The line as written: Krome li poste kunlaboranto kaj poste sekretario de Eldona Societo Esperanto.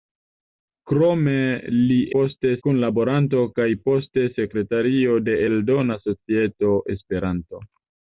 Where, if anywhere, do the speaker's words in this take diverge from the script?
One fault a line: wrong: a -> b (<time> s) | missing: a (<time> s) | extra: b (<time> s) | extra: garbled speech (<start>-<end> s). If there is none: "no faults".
no faults